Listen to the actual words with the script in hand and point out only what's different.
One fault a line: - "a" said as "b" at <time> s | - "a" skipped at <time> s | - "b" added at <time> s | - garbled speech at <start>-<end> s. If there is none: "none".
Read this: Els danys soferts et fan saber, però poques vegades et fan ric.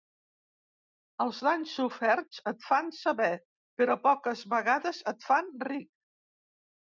none